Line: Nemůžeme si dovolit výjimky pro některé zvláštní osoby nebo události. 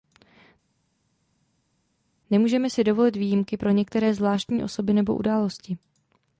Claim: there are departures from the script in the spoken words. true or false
false